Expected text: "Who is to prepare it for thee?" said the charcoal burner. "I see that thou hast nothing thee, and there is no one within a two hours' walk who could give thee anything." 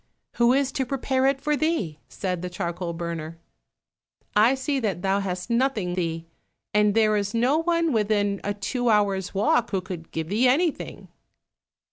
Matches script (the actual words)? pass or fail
pass